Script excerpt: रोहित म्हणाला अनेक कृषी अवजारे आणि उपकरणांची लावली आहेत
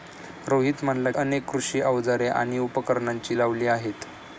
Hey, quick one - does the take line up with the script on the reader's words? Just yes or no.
yes